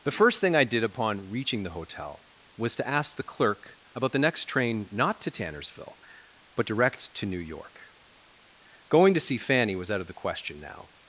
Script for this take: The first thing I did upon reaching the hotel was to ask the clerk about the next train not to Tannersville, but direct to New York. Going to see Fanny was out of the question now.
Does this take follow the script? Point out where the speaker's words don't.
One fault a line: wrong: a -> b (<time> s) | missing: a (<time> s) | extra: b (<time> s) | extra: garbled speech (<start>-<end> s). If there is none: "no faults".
no faults